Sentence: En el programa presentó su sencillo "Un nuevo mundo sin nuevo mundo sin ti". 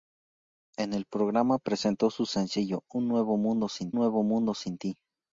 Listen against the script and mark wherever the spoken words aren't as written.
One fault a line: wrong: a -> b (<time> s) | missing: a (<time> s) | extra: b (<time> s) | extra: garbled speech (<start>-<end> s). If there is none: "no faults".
no faults